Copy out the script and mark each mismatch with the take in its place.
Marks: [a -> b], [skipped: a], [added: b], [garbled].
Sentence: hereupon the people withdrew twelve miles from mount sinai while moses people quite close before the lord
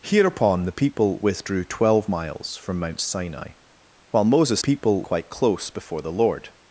hereupon the people withdrew twelve miles from mount sinai while moses people quite close before the lord